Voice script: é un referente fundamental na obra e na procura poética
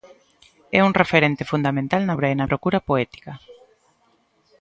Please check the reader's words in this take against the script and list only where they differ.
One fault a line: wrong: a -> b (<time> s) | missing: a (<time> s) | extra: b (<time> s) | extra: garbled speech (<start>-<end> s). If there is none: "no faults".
no faults